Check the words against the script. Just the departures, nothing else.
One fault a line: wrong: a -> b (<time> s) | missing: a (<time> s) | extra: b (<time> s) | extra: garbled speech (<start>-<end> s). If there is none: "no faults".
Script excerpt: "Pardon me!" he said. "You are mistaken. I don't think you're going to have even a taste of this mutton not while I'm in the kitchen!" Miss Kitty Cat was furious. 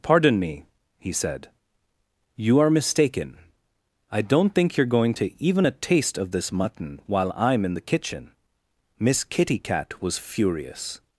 missing: have (5.3 s)
missing: not (7.0 s)